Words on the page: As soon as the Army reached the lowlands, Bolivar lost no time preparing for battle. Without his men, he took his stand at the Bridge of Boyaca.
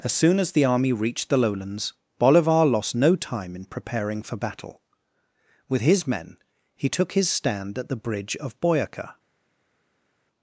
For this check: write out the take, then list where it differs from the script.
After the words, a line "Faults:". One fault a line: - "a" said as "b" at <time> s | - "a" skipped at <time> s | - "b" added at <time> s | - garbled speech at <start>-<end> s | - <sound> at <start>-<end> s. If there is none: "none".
As soon as the Army reached the lowlands, Bolivar lost no time in preparing for battle. With his men, he took his stand at the Bridge of Boyaca.
Faults:
- "in" added at 3.5 s
- "Without" said as "With" at 5.7 s